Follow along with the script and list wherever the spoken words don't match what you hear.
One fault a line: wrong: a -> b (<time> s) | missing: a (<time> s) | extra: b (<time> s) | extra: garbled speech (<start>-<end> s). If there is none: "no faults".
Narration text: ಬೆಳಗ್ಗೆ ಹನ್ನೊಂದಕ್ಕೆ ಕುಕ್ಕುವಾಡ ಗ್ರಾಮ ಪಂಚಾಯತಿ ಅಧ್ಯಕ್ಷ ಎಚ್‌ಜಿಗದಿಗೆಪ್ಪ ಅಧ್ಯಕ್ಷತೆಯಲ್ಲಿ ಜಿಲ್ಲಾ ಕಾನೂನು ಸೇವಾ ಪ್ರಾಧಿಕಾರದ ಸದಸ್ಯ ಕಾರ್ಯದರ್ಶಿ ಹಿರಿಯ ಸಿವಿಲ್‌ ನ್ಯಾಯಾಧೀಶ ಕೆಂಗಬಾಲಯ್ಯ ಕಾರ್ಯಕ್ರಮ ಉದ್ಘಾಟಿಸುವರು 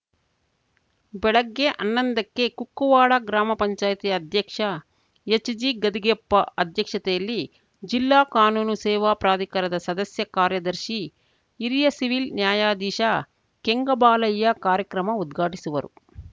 no faults